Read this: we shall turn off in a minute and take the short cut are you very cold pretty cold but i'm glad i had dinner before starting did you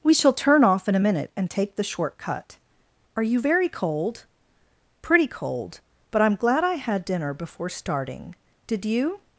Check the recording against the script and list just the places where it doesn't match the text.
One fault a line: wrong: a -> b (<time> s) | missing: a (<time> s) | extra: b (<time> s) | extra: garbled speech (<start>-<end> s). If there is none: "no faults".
no faults